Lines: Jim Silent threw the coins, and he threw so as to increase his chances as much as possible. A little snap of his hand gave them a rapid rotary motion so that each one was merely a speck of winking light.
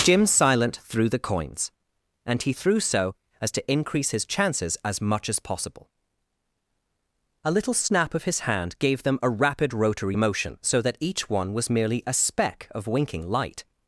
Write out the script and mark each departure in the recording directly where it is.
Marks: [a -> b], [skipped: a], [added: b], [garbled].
Jim Silent threw the coins, and he threw so as to increase his chances as much as possible. A little snap of his hand gave them a rapid rotary motion so that each one was merely a speck of winking light.